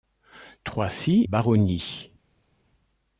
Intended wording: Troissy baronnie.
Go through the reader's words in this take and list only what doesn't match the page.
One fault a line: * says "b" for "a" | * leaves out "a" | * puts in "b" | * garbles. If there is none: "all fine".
all fine